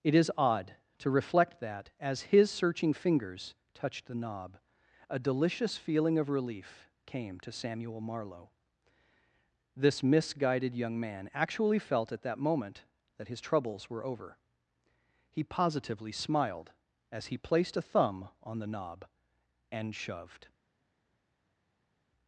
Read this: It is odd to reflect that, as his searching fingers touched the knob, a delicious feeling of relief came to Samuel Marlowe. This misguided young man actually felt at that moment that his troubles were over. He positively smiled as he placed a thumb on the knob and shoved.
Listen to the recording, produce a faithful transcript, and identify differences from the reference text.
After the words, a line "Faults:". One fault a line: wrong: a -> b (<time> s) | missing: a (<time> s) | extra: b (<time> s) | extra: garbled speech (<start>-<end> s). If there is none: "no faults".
It is odd to reflect that, as his searching fingers touched the knob, a delicious feeling of relief came to Samuel Marlowe. This misguided young man actually felt at that moment that his troubles were over. He positively smiled as he placed a thumb on the knob and shoved.
Faults:
no faults